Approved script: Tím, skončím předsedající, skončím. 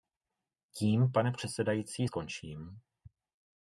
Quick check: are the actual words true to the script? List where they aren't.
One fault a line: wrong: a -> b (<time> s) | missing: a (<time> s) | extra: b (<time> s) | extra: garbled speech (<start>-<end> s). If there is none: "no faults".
wrong: skončím -> pane (1.1 s)